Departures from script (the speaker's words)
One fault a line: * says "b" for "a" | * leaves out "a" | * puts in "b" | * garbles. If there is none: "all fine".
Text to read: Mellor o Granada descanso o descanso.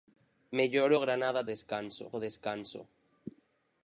all fine